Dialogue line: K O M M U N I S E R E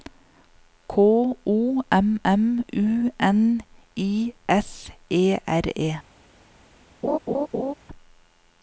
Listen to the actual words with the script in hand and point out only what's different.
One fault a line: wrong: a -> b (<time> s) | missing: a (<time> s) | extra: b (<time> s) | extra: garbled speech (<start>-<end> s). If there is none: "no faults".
no faults